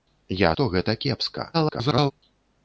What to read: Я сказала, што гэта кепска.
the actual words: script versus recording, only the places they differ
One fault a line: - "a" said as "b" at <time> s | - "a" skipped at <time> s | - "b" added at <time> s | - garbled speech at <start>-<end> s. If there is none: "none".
- "сказала" skipped at 0.5 s
- garbled speech at 1.5-2.1 s